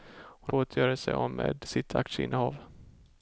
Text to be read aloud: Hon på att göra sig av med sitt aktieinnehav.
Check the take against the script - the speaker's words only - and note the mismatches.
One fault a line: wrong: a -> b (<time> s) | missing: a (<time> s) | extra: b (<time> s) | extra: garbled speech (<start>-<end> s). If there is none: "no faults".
no faults